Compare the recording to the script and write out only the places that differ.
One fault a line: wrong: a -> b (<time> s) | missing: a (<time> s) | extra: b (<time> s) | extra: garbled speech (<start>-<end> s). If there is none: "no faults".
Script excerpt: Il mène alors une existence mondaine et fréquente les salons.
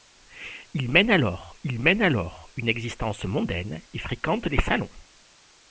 extra: il mène alors (1.6 s)